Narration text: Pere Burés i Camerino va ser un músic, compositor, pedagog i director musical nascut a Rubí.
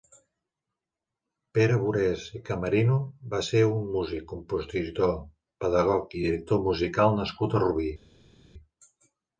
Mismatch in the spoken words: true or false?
false